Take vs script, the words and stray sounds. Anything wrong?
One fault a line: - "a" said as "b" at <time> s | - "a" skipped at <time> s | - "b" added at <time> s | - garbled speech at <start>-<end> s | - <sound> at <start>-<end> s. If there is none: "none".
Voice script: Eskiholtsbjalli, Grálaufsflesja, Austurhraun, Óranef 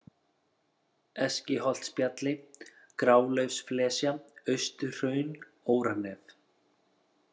none